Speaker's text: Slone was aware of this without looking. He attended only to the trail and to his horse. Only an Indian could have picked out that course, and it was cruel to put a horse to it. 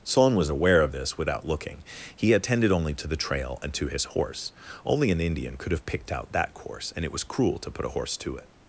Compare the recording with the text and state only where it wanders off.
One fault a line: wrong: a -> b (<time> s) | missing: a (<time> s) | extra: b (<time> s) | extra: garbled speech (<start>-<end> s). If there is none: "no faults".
wrong: Slone -> Son (0.0 s)